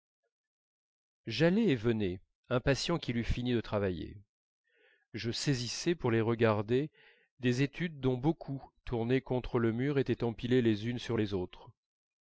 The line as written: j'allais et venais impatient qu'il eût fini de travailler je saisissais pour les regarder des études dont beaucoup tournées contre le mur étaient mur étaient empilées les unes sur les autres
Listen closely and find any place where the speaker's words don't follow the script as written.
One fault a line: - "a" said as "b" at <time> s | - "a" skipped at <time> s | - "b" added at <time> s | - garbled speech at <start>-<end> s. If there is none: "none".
- "mur étaient" skipped at 10.2 s